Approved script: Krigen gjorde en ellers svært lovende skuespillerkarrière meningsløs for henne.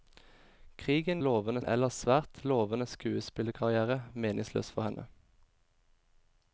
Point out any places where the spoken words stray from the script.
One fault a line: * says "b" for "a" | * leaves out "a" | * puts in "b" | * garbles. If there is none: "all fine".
* says "lovende" for "gjorde"